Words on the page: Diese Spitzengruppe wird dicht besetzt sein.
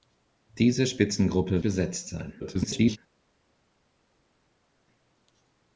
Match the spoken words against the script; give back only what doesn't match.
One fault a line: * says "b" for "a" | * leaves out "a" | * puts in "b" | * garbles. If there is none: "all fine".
* leaves out "wird dicht"
* garbles